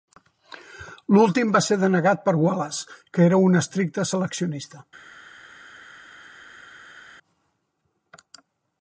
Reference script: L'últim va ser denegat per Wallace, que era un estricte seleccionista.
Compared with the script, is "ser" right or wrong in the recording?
right